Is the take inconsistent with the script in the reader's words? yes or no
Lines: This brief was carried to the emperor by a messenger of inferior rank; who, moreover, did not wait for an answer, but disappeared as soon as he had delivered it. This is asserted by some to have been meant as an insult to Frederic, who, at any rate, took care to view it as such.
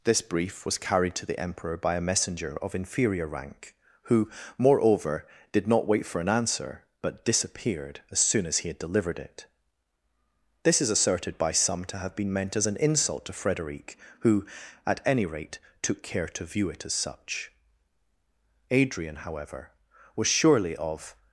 yes